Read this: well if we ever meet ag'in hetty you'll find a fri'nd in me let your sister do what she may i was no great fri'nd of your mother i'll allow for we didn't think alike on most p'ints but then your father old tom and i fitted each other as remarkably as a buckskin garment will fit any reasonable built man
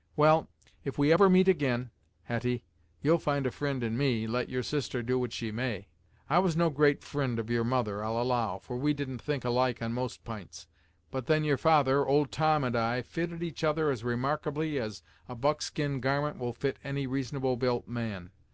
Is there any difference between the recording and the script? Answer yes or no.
no